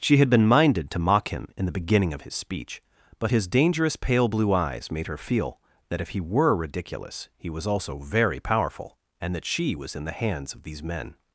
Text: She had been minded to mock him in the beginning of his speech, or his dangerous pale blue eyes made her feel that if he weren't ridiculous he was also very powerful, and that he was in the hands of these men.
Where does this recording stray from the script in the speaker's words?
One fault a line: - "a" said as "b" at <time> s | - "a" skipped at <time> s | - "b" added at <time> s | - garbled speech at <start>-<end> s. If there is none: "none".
- "or" said as "but" at 3.2 s
- "weren't" said as "were" at 6.2 s
- "he" said as "she" at 9.4 s